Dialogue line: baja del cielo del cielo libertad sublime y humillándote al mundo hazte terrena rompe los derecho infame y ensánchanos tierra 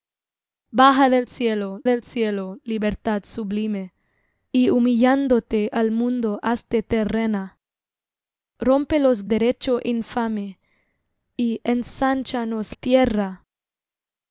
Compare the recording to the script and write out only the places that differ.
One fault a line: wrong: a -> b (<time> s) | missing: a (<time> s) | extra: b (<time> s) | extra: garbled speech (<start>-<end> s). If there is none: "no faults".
no faults